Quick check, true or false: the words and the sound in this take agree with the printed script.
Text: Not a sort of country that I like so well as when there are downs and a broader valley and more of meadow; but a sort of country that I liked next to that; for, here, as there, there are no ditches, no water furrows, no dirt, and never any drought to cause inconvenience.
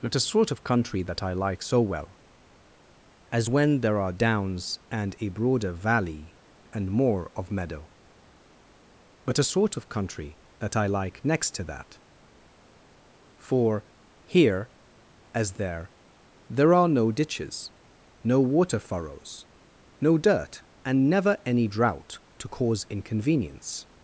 false